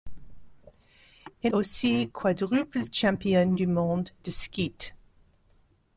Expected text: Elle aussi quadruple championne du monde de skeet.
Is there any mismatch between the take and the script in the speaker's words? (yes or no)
no